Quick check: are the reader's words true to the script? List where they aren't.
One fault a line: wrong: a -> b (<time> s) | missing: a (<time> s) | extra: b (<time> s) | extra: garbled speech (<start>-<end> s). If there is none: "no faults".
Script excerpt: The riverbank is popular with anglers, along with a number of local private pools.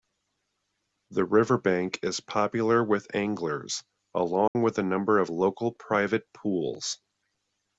no faults